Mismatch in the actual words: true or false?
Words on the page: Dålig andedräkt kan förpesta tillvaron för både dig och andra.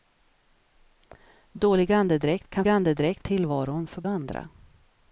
true